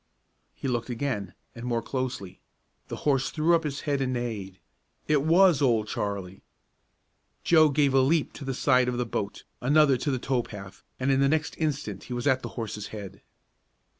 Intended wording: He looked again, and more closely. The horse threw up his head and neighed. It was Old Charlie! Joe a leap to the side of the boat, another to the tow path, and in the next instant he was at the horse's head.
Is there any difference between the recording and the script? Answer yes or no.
yes